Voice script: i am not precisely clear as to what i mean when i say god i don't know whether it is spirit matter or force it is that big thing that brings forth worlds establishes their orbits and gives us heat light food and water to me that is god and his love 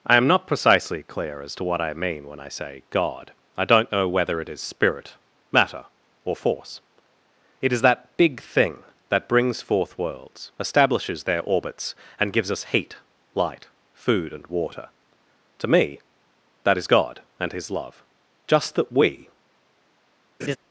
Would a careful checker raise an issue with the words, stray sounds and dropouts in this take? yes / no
yes